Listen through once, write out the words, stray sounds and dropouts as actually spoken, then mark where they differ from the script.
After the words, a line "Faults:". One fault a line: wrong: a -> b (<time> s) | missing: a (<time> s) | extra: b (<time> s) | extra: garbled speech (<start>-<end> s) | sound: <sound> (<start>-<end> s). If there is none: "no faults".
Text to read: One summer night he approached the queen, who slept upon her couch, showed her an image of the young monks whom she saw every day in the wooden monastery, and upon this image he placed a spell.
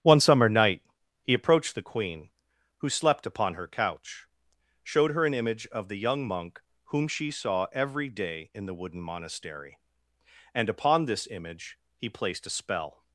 One summer night he approached the queen, who slept upon her couch, showed her an image of the young monk whom she saw every day in the wooden monastery, and upon this image he placed a spell.
Faults:
wrong: monks -> monk (6.3 s)